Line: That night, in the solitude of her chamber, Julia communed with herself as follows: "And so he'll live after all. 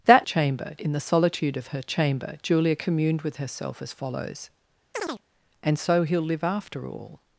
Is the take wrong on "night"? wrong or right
wrong